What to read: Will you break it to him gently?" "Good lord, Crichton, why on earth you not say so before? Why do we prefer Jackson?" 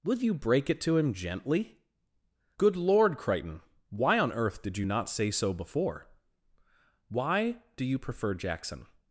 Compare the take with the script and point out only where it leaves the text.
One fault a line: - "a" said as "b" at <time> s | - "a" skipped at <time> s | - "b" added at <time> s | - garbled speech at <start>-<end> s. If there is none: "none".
- "did" added at 4.6 s
- "we" said as "you" at 7.8 s